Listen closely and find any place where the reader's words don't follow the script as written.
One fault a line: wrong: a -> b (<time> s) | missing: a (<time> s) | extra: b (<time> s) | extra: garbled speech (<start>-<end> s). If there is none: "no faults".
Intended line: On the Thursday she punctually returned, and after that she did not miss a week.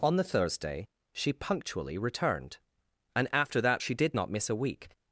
no faults